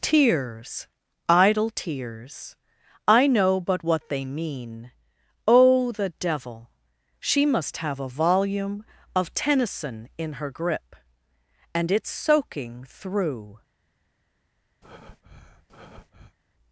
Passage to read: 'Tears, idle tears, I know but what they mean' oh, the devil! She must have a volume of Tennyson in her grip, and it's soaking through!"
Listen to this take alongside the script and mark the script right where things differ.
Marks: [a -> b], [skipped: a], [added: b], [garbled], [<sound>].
'Tears, idle tears, I know but what they mean' oh, the devil! She must have a volume of Tennyson in her grip, and it's soaking through!" [breath]